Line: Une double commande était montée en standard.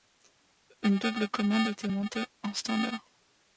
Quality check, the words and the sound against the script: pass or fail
pass